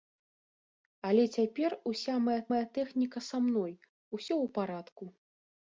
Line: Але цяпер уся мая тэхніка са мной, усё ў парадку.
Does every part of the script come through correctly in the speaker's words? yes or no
no